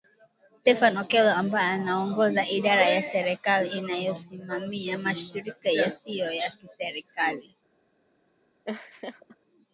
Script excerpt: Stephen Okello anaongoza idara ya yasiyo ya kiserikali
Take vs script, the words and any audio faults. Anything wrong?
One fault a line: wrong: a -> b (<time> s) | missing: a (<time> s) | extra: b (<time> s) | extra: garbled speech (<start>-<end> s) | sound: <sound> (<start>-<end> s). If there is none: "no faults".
extra: ambaye (1.3 s)
extra: serikali inayosimamia mashirika (3.0 s)
sound: laugh (8.6-9.4 s)